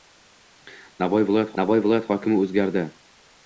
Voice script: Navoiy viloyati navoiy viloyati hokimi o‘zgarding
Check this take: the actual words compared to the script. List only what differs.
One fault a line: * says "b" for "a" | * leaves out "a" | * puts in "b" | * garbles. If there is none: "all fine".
all fine